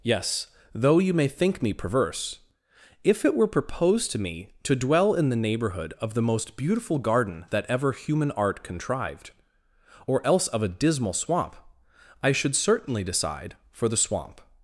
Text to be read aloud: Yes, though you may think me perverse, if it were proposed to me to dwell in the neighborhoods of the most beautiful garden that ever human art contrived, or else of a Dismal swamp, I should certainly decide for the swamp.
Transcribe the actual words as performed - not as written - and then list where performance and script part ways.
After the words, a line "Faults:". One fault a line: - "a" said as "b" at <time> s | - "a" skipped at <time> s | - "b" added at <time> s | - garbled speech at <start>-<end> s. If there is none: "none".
Yes, though you may think me perverse, if it were proposed to me to dwell in the neighborhood of the most beautiful garden that ever human art contrived, or else of a Dismal swamp, I should certainly decide for the swamp.
Faults:
- "neighborhoods" said as "neighborhood" at 5.4 s